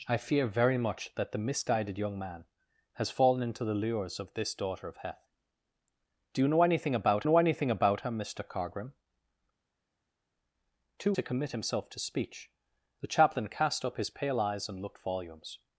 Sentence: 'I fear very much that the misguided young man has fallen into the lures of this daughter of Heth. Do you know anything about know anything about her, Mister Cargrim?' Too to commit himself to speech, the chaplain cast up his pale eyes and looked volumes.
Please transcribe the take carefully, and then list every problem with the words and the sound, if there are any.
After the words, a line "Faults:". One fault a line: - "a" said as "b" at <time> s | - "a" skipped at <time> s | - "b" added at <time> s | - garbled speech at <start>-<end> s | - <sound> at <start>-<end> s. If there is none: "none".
'I fear very much that the misguided young man has fallen into the lures of this daughter of Heth. Do you know anything about know anything about her, Mister Cargrim?' Too to commit himself to speech, the chaplain cast up his pale eyes and looked volumes.
Faults:
none